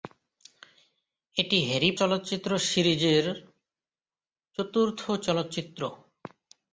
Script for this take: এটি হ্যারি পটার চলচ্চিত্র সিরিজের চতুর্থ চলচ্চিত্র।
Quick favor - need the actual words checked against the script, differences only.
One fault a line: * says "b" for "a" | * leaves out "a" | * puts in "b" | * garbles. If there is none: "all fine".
* leaves out "পটার"